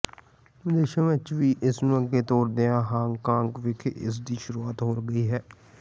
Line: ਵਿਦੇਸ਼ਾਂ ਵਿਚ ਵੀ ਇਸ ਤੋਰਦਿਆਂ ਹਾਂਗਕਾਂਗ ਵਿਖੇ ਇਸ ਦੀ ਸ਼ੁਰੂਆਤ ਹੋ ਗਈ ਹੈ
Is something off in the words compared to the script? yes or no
yes